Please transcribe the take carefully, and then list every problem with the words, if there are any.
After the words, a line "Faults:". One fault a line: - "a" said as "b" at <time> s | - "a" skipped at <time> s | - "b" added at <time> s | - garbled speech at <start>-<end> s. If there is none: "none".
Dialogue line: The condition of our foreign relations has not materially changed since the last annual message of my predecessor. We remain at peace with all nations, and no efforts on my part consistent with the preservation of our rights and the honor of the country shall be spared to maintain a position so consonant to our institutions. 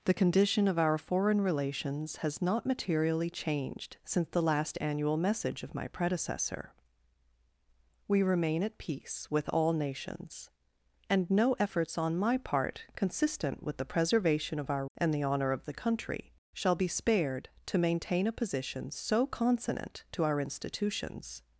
The condition of our foreign relations has not materially changed since the last annual message of my predecessor. We remain at peace with all nations, and no efforts on my part consistent with the preservation of our and the honor of the country shall be spared to maintain a position so consonant to our institutions.
Faults:
- "rights" skipped at 14.9 s